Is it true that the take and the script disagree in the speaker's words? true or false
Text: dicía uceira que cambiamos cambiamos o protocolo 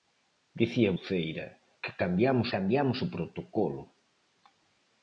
false